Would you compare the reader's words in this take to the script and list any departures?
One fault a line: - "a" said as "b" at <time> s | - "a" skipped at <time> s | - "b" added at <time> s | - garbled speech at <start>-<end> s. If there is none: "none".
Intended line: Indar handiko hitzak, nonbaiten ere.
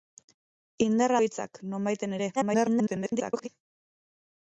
- "handiko" skipped at 1.1 s
- garbled speech at 2.4-3.5 s